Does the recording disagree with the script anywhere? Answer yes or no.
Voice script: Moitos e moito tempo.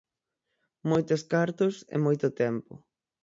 yes